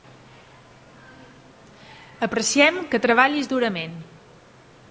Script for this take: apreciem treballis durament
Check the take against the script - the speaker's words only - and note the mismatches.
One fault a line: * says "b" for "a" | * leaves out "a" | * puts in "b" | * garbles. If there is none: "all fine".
* puts in "que"